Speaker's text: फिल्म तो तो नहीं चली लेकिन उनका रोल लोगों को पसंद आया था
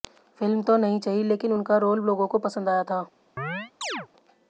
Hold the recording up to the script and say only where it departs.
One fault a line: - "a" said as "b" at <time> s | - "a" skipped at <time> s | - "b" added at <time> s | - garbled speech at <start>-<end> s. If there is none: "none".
- "तो" skipped at 0.8 s